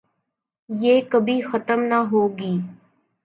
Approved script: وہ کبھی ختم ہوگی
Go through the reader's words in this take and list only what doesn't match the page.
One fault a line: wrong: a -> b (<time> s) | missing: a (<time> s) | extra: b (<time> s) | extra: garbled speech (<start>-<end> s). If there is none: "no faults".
wrong: وہ -> یہ (0.7 s)
extra: نہ (1.8 s)